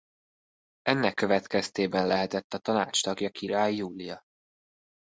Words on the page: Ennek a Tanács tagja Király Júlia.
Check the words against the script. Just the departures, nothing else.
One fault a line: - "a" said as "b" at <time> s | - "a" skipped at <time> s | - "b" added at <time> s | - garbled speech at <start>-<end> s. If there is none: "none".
- "következtében lehetett" added at 1.1 s